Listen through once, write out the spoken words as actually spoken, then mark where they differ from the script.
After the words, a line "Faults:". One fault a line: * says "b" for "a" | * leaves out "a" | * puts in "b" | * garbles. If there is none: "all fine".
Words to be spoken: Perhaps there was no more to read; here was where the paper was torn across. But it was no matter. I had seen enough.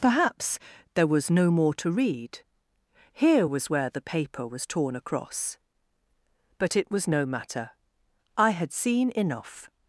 Perhaps there was no more to read; here was where the paper was torn across. But it was no matter. I had seen enough.
Faults:
all fine